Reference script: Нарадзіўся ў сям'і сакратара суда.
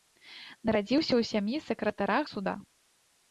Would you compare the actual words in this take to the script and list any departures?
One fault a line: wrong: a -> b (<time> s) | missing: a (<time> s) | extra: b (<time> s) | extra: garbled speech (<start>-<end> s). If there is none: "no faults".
no faults